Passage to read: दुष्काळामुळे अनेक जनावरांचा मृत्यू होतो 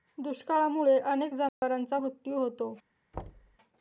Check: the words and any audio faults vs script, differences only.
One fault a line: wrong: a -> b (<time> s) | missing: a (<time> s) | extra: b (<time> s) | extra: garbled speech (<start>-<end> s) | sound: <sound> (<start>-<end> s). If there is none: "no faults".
sound: dropout (1.5-1.6 s)
sound: thud (3.1-3.6 s)